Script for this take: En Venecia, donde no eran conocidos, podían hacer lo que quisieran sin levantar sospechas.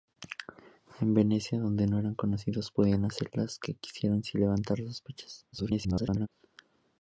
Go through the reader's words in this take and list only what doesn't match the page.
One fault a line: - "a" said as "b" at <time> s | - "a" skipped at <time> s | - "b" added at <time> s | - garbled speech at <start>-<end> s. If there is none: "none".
- garbled speech at 5.5-6.3 s